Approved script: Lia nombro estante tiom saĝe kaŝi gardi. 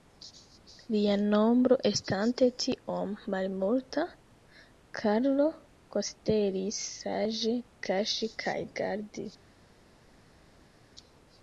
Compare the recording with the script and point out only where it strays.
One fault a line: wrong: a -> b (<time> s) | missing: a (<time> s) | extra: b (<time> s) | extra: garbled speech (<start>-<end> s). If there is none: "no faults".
extra: malmulta Karlo konsideris (3.3 s)
extra: kaj (8.5 s)